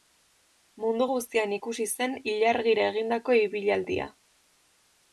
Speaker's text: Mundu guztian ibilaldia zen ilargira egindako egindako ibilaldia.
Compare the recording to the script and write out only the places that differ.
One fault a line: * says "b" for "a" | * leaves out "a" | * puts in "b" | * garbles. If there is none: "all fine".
* says "ikusi" for "ibilaldia"
* leaves out "egindako"